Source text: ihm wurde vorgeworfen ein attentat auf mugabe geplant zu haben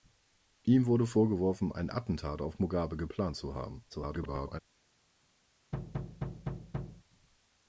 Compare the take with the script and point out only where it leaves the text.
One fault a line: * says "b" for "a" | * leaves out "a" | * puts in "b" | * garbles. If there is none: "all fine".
* garbles